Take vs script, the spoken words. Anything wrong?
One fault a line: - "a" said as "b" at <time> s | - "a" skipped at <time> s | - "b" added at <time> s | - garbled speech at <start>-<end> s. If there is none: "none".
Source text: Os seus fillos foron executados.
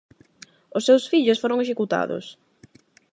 none